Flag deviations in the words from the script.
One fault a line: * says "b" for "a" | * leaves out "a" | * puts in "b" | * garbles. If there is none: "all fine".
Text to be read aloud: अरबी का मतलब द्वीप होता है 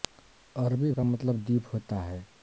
all fine